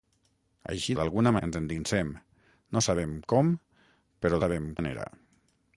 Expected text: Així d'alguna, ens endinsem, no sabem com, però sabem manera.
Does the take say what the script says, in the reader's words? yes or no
yes